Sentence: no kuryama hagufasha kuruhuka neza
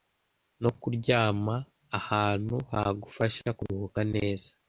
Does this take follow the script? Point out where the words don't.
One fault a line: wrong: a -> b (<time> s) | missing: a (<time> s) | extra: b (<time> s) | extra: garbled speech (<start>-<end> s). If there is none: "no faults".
extra: ahantu (2.0 s)